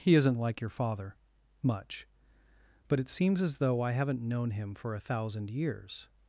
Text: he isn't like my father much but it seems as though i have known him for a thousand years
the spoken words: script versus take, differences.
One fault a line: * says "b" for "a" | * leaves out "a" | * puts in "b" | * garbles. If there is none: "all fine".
* says "your" for "my"
* says "haven't" for "have"